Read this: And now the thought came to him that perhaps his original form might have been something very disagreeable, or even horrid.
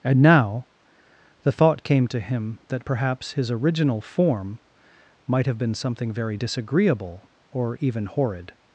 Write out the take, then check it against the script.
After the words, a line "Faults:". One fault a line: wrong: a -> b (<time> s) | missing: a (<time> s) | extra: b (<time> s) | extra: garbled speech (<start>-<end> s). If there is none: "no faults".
And now the thought came to him that perhaps his original form might have been something very disagreeable, or even horrid.
Faults:
no faults